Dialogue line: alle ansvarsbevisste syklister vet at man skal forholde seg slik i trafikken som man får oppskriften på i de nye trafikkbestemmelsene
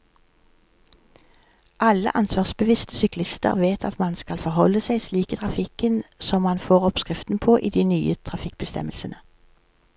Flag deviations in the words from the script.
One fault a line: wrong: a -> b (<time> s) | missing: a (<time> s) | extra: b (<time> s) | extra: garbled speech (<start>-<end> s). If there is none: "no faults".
no faults